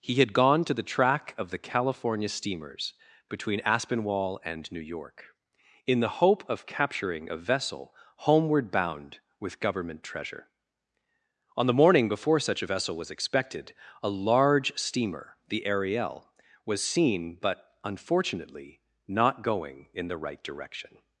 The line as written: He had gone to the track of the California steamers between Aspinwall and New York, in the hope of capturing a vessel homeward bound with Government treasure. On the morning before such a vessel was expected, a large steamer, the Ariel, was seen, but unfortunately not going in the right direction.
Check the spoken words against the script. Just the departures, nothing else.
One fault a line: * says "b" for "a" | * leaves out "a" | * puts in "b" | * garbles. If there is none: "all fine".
all fine